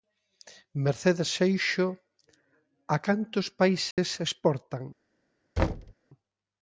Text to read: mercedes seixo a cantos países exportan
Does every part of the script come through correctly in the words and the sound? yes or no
no